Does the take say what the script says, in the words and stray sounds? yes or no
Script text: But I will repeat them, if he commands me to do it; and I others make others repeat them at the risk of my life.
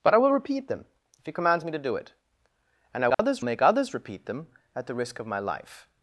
no